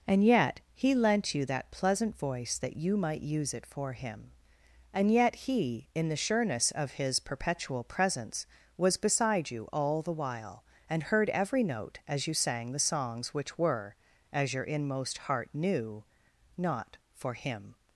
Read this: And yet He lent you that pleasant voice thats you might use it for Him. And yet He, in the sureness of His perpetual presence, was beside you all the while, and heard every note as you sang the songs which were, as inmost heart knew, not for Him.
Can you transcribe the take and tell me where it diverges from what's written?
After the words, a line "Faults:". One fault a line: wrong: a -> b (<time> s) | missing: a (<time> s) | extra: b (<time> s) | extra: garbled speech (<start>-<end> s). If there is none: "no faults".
And yet He lent you that pleasant voice that you might use it for Him. And yet He, in the sureness of His perpetual presence, was beside you all the while, and heard every note as you sang the songs which were, as your inmost heart knew, not for Him.
Faults:
wrong: thats -> that (2.6 s)
extra: your (14.5 s)